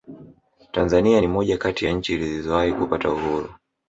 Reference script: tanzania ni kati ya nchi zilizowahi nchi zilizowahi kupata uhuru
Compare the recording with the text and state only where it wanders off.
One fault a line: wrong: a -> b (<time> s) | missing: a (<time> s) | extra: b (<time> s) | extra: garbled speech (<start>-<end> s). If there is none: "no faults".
extra: moja (1.3 s)
missing: nchi zilizowahi (2.7 s)